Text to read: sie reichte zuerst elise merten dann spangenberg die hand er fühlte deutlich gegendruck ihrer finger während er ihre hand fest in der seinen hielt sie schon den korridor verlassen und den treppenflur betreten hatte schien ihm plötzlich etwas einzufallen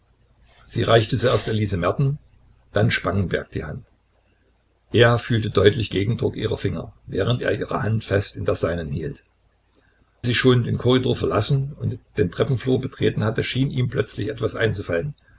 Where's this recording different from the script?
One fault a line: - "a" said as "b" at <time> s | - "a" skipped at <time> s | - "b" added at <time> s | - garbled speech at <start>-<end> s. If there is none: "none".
none